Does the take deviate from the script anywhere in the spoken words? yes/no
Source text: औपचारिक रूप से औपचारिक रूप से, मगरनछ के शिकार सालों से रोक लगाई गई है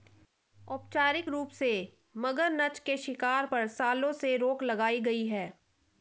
yes